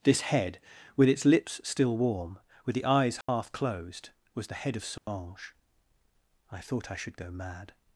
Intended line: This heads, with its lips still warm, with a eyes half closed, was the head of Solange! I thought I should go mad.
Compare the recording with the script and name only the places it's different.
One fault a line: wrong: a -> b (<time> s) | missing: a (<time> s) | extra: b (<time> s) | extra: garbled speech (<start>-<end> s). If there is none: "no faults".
wrong: heads -> head (0.2 s)
wrong: a -> the (2.7 s)